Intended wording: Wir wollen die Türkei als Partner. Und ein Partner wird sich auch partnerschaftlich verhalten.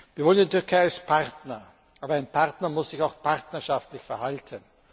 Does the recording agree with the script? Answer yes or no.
no